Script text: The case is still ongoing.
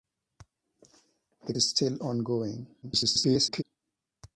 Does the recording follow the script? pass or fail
fail